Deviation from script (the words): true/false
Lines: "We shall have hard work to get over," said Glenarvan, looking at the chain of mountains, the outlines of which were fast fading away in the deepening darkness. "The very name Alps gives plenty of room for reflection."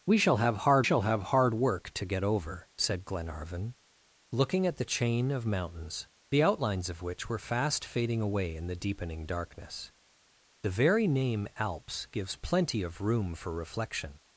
true